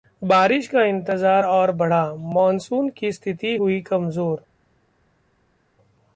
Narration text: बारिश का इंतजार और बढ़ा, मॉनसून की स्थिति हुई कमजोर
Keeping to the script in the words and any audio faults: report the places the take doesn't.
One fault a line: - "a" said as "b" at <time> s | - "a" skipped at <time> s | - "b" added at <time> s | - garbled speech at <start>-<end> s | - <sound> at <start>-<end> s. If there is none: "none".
none